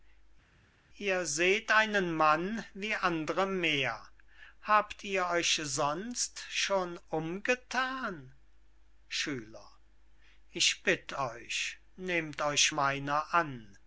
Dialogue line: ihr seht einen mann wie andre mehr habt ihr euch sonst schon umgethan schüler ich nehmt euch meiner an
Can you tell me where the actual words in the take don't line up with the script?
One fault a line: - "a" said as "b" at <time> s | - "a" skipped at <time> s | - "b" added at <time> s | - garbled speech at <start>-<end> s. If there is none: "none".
- "bitt euch" added at 10.8 s